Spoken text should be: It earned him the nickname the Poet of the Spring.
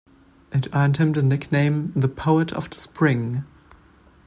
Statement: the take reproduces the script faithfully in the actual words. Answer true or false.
true